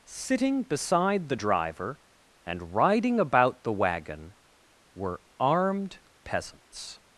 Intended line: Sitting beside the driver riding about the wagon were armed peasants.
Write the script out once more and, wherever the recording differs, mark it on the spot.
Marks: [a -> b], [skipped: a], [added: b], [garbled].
Sitting beside the driver [added: and] riding about the wagon were armed peasants.